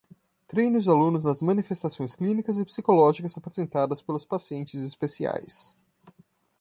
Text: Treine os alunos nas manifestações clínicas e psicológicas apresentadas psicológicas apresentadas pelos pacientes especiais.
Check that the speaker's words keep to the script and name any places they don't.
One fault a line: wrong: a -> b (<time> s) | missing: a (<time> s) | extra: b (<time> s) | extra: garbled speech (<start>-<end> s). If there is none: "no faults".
missing: psicológicas apresentadas (4.0 s)